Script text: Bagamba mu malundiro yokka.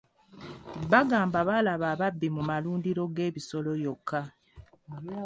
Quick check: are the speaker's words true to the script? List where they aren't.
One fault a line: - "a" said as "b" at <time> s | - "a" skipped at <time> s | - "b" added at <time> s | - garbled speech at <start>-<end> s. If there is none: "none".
- "baalaba ababbi" added at 1.5 s
- "g'ebisolo" added at 3.1 s